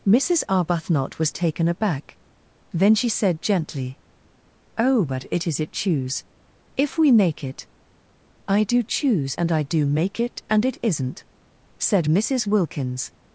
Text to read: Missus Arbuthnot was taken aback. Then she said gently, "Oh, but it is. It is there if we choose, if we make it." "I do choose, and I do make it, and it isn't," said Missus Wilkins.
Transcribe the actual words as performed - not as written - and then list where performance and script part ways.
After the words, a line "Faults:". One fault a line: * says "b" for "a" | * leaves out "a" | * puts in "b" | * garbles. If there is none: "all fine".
Missus Arbuthnot was taken aback. Then she said gently, "Oh, but it is. It choose, if we make it." "I do choose, and I do make it, and it isn't," said Missus Wilkins.
Faults:
* leaves out "is there if we"